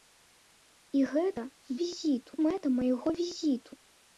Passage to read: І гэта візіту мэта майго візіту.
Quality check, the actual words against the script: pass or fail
pass